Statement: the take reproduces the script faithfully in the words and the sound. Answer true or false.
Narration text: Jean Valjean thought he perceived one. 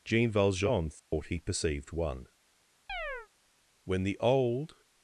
false